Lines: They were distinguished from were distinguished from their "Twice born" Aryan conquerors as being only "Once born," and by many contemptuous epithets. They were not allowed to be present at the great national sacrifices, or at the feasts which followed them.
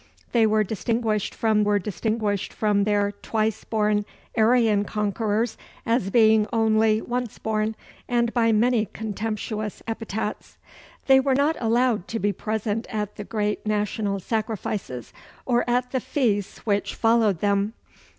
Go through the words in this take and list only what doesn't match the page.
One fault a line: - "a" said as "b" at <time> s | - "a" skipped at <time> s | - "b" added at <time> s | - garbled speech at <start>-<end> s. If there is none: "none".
none